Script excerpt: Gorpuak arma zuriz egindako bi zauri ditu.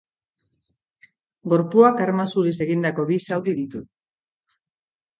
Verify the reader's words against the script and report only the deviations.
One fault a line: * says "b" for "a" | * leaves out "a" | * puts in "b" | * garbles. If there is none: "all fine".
all fine